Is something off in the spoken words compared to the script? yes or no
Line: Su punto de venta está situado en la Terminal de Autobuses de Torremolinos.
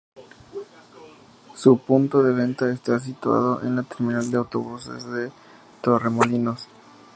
no